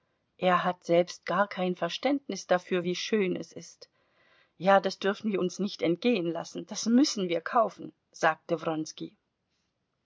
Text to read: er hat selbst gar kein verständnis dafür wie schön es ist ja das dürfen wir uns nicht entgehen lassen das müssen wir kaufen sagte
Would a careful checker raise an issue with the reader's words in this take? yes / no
no